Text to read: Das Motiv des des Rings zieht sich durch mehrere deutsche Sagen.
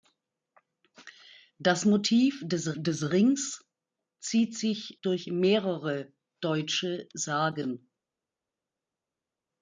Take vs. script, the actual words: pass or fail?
pass